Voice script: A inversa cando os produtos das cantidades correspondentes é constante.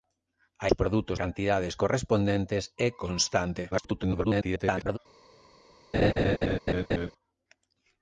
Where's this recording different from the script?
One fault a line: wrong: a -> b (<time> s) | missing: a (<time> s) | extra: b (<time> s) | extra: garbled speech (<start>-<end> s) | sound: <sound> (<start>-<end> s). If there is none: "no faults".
missing: inversa cando (0.7 s)
missing: das (1.2 s)
extra: garbled speech (3.7-5.0 s)
sound: laugh (5.9-7.1 s)